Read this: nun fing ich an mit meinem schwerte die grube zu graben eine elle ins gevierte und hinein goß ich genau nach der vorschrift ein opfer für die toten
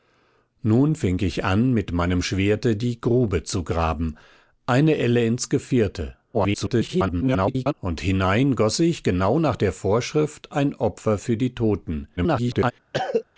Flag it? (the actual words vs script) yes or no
yes